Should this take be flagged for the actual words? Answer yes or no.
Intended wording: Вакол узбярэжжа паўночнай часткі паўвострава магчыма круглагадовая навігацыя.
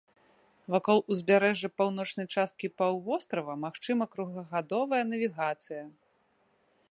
no